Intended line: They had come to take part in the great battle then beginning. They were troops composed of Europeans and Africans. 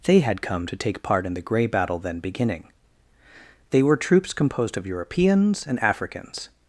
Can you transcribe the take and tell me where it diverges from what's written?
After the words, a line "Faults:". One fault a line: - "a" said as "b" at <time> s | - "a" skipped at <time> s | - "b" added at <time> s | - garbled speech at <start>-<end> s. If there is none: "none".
They had come to take part in the grey battle then beginning. They were troops composed of Europeans and Africans.
Faults:
- "great" said as "grey" at 1.4 s